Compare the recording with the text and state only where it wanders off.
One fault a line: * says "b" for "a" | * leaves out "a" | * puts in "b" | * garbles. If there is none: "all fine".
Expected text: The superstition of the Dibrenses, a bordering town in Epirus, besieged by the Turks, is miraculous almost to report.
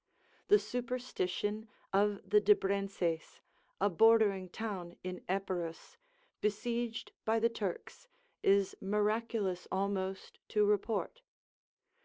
all fine